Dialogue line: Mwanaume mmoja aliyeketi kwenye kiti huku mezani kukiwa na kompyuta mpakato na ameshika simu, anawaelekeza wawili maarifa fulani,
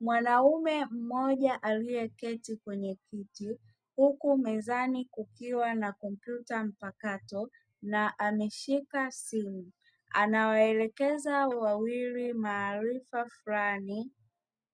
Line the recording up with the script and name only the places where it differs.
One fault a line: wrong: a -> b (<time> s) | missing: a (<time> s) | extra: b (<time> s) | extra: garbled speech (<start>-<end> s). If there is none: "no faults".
no faults